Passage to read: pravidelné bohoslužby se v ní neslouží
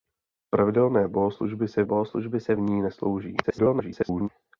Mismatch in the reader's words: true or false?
true